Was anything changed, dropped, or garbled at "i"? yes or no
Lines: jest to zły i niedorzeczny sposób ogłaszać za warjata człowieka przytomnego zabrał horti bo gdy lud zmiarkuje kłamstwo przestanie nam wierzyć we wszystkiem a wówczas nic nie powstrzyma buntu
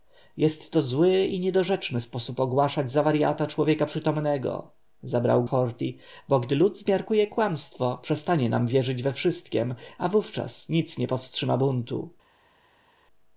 no